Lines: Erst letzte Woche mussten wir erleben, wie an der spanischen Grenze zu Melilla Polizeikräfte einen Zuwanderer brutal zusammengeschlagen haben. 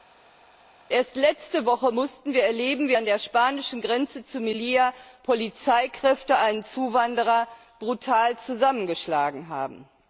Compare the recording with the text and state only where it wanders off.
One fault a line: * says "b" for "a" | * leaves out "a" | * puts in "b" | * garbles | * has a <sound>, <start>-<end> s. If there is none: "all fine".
all fine